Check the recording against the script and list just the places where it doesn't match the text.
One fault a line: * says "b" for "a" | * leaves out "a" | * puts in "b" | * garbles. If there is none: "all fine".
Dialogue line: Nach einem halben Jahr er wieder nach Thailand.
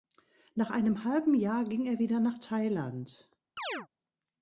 * puts in "ging"